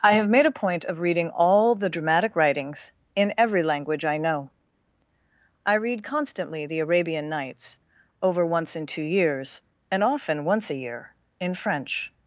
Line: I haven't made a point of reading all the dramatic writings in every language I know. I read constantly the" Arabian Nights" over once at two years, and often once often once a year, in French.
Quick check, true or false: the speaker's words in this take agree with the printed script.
false